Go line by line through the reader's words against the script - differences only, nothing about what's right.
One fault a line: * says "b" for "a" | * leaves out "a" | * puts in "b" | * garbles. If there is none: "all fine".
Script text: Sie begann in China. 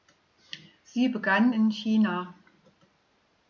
all fine